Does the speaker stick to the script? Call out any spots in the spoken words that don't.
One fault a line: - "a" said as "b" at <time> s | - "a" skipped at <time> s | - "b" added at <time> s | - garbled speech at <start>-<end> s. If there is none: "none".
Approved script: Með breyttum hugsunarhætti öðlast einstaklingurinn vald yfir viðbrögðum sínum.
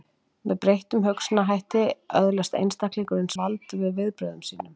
none